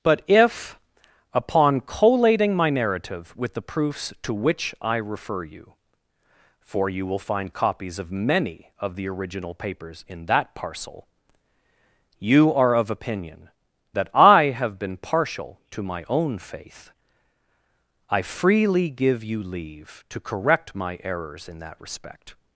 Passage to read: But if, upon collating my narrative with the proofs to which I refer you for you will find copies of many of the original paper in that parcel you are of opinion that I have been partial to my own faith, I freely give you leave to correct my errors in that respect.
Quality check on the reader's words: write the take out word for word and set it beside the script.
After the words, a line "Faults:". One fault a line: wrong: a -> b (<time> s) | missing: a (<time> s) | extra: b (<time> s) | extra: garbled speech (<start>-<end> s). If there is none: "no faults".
But if, upon collating my narrative with the proofs to which I refer you for you will find copies of many of the original papers in that parcel you are of opinion that I have been partial to my own faith, I freely give you leave to correct my errors in that respect.
Faults:
wrong: paper -> papers (9.5 s)